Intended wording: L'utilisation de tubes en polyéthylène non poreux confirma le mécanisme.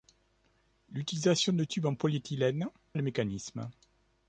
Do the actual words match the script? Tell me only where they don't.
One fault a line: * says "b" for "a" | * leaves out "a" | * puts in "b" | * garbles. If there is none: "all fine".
* leaves out "non poreux confirma"